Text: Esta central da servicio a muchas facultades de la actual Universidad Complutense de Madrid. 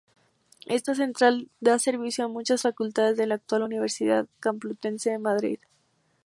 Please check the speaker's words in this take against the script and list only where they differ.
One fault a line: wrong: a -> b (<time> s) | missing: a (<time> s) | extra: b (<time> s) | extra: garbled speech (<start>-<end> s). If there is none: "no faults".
no faults